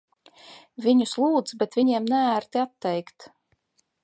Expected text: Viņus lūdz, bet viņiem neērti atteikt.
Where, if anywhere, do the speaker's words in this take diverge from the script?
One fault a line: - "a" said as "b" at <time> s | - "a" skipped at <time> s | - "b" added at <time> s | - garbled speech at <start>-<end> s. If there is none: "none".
none